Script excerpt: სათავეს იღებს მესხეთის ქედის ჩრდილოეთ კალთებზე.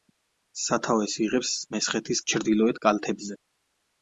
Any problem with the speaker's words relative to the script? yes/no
yes